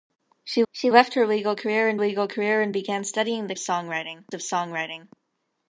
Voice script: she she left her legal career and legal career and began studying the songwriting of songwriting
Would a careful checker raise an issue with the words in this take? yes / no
no